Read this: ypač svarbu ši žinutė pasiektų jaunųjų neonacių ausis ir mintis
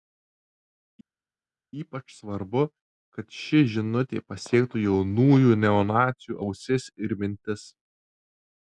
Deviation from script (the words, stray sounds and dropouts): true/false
true